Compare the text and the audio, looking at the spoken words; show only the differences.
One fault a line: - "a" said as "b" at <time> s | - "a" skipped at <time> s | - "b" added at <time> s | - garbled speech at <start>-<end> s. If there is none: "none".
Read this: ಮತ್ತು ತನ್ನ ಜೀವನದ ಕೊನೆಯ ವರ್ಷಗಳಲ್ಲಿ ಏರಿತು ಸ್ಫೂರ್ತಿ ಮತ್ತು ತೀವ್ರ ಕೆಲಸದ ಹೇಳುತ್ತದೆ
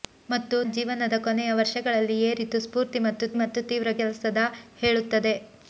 - "ತನ್ನ" skipped at 0.6 s
- "ಮತ್ತು" added at 3.4 s